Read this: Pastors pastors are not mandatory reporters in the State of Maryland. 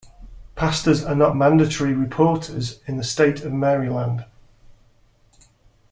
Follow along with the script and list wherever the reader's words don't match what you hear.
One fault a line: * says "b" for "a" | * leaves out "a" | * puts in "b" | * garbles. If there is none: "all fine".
* leaves out "pastors"